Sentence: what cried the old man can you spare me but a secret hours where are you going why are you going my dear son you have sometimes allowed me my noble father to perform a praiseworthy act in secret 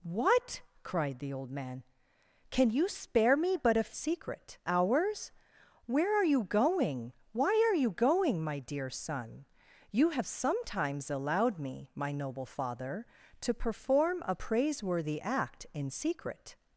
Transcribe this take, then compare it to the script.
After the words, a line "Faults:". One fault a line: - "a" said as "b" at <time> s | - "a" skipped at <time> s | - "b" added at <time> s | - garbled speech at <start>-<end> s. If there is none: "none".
what cried the old man can you spare me but a secret hours where are you going why are you going my dear son you have sometimes allowed me my noble father to perform a praiseworthy act in secret
Faults:
none